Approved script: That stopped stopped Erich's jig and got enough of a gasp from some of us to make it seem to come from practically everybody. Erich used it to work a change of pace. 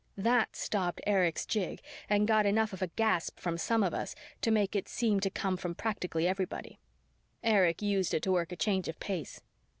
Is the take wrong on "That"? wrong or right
right